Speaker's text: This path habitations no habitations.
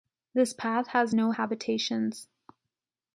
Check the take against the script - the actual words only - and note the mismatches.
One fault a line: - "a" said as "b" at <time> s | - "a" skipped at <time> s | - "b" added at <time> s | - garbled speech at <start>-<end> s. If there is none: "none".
- "habitations" said as "has" at 0.9 s